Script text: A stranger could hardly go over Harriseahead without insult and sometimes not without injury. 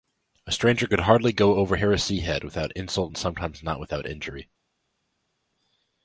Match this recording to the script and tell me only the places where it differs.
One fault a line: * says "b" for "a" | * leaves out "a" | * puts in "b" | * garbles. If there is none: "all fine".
all fine